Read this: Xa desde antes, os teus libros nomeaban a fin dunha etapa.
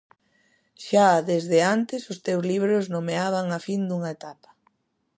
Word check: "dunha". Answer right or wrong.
right